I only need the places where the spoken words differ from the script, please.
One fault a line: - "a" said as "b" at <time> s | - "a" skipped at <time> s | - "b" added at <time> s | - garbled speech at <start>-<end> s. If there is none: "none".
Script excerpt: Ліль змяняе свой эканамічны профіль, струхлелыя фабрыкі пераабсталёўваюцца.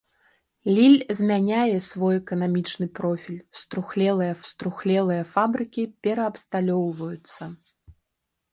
- "струхлелыя" added at 4.5 s